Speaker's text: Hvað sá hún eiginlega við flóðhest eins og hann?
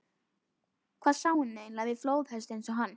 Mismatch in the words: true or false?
false